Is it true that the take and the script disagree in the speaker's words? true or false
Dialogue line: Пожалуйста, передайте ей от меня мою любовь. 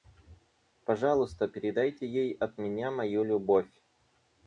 false